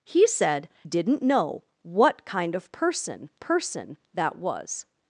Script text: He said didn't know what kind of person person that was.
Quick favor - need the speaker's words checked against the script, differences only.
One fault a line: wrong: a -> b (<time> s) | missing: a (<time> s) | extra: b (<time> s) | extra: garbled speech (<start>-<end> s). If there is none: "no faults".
no faults